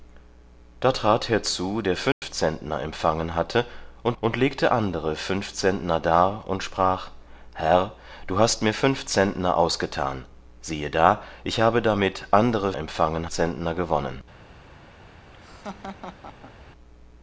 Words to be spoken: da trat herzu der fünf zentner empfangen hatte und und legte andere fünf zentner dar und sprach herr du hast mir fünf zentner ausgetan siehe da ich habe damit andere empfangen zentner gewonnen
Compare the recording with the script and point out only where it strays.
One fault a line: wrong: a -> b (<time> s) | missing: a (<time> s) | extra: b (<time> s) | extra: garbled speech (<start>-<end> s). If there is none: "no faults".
no faults